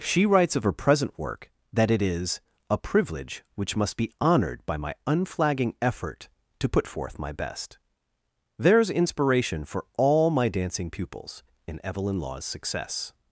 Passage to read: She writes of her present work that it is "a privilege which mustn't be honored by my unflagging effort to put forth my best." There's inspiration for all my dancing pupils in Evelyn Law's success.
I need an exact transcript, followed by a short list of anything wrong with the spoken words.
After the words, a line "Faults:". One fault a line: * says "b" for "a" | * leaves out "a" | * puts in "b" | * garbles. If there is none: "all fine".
She writes of her present work that it is "a privilege which must be honored by my unflagging effort to put forth my best." There's inspiration for all my dancing pupils in Evelyn Law's success.
Faults:
* says "must" for "mustn't"